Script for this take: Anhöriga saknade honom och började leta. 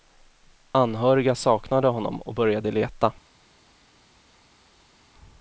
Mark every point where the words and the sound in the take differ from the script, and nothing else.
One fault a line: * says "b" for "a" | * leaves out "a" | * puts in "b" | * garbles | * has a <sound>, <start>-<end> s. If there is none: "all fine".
all fine